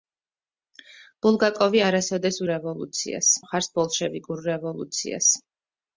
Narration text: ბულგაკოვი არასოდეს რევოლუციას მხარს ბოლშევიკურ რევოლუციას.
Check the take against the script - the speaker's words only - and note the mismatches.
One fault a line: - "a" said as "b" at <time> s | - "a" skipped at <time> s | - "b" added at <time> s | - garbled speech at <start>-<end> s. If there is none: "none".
none